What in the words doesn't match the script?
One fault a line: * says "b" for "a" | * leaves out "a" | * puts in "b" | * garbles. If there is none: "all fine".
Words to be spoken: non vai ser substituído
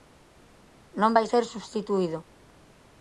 all fine